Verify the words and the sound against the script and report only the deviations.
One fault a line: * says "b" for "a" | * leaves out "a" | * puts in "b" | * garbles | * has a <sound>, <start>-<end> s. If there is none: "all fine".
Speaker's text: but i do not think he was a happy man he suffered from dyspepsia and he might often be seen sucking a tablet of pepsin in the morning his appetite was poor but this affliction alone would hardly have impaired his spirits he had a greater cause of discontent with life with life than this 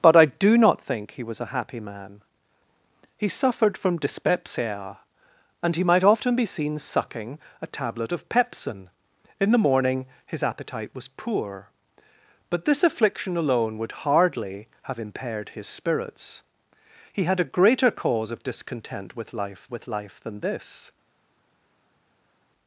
all fine